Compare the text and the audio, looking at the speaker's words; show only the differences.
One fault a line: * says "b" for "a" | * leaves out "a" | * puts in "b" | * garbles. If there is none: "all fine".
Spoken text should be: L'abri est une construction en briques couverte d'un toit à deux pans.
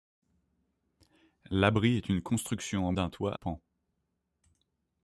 * leaves out "briques couverte"
* leaves out "à deux"